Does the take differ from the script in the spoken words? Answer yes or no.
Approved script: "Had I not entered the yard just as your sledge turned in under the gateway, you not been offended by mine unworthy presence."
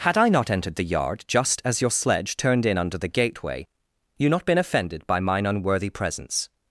no